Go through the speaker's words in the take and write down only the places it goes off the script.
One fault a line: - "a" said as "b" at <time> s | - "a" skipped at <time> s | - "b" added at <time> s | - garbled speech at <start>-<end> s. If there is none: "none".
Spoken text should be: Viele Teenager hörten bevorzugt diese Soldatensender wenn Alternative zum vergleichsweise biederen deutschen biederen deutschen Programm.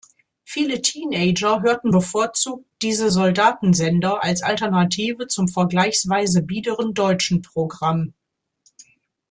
- "wenn" said as "als" at 4.2 s
- "biederen deutschen" skipped at 7.4 s